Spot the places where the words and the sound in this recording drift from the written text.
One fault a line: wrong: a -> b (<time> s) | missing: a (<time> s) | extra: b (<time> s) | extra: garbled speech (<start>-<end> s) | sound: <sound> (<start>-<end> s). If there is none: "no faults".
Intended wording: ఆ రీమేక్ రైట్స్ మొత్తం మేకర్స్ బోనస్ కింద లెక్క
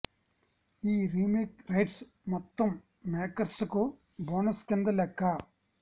wrong: ఆ -> ఈ (0.8 s)
extra: కు (3.7 s)